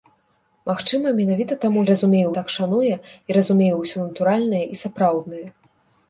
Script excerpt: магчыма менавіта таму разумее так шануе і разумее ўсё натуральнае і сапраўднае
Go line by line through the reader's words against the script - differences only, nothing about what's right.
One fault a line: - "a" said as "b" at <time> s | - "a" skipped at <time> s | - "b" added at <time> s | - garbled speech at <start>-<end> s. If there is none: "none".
none